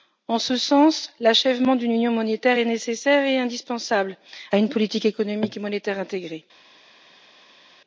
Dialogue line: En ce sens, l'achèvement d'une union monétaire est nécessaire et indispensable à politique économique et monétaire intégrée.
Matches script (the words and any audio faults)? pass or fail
fail